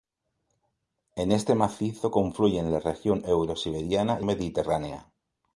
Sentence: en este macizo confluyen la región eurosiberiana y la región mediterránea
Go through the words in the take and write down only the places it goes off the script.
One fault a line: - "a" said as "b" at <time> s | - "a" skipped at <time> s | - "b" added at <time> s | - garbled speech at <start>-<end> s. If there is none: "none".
- "la región" skipped at 4.2 s